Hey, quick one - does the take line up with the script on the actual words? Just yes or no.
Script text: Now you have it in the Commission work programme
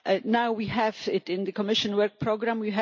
no